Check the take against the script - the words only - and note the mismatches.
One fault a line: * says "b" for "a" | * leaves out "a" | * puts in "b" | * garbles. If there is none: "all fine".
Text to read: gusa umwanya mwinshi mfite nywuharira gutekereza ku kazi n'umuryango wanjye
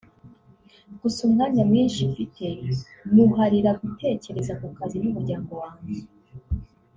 all fine